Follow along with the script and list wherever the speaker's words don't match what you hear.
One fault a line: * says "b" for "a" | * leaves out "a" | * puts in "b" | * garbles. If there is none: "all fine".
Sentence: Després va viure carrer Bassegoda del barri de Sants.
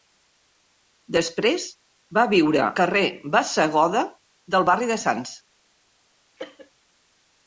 all fine